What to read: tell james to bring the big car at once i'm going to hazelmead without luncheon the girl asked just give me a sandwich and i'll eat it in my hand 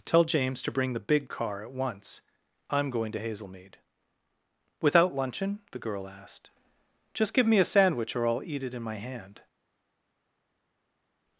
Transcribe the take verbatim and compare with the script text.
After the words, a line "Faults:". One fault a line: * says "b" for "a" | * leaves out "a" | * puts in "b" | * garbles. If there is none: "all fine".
tell james to bring the big car at once i'm going to hazelmead without luncheon the girl asked just give me a sandwich or i'll eat it in my hand
Faults:
* says "or" for "and"